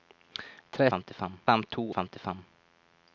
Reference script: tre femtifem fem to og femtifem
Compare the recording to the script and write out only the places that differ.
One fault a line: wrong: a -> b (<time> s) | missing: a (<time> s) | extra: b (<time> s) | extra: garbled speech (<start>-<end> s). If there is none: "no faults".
no faults